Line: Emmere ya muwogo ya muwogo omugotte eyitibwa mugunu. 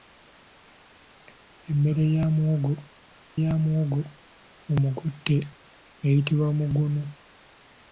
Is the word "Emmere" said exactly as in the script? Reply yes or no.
yes